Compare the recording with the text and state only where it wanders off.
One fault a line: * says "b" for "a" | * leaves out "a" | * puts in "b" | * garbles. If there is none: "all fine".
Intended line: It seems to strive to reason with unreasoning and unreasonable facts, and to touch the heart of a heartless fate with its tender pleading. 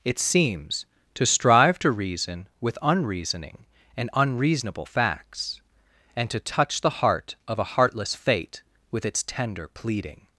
all fine